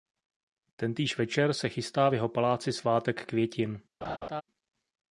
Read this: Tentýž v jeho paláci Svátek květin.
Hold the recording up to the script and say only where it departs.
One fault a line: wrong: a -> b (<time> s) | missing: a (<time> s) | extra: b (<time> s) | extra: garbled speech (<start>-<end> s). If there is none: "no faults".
extra: večer se chystá (1.2 s)